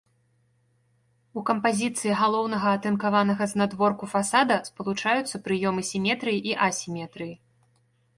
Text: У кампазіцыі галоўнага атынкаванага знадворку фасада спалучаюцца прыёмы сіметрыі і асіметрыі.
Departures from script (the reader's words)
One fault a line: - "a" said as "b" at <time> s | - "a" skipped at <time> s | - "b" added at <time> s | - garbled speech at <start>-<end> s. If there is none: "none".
none